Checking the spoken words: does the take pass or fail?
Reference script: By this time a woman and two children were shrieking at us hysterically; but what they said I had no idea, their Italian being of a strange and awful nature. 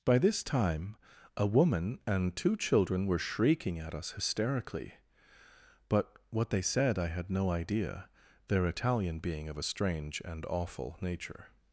pass